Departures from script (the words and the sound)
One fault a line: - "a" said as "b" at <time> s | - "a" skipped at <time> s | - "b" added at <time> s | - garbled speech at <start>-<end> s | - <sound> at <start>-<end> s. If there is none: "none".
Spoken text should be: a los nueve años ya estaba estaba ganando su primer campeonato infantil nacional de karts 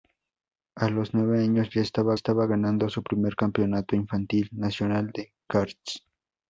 none